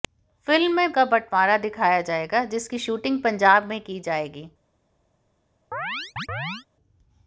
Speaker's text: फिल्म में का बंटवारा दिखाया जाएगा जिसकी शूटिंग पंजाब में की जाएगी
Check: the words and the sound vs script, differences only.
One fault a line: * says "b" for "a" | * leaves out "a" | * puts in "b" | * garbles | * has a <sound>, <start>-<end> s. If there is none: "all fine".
* has a chirp, 5.7-6.7 s